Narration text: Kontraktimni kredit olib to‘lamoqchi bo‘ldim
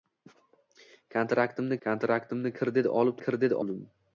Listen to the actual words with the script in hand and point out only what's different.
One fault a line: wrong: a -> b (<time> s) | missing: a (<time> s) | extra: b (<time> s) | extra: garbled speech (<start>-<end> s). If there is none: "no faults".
extra: kontraktimni (1.9 s)
wrong: to‘lamoqchi -> kredit (3.2 s)